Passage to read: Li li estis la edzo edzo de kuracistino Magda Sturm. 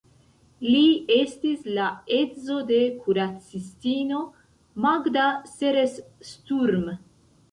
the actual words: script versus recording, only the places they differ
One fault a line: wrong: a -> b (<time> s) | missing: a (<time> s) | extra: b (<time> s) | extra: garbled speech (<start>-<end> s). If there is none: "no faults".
missing: li (0.8 s)
missing: edzo (2.6 s)
extra: Seres (5.5 s)